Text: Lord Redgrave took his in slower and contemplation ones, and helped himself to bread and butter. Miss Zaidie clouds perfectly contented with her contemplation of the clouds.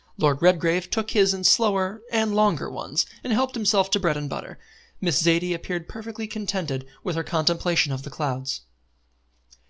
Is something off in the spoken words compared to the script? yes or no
yes